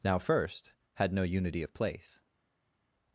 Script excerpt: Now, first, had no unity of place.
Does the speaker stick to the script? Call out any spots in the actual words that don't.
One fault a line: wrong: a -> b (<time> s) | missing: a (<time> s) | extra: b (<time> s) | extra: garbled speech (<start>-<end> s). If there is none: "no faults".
no faults